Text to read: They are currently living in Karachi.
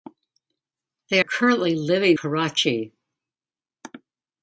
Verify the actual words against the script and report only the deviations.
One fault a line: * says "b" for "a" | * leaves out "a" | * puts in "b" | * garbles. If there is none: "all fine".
* leaves out "are"
* leaves out "in"